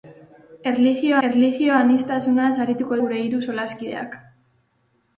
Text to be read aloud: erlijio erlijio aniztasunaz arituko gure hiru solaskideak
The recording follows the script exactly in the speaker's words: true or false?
true